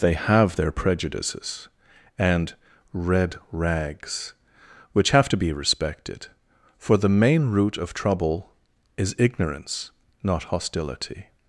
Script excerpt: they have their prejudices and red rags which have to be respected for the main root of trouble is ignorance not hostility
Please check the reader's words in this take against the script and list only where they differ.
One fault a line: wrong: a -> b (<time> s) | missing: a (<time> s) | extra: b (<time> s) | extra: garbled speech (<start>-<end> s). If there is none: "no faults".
no faults